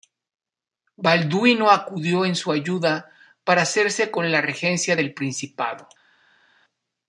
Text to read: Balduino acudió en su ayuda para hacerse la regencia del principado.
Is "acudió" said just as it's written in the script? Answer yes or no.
yes